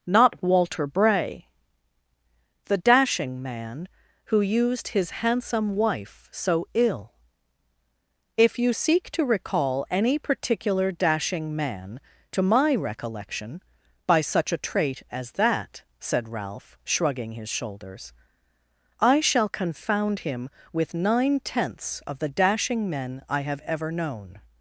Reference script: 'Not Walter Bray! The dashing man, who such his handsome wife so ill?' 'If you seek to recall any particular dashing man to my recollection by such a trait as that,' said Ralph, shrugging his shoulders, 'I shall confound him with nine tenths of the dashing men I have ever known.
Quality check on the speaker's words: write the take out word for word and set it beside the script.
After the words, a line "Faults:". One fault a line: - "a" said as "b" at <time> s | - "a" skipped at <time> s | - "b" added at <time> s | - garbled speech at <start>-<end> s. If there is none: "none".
'Not Walter Bray! The dashing man, who used his handsome wife so ill?' 'If you seek to recall any particular dashing man to my recollection by such a trait as that,' said Ralph, shrugging his shoulders, 'I shall confound him with nine tenths of the dashing men I have ever known.
Faults:
- "such" said as "used" at 4.4 s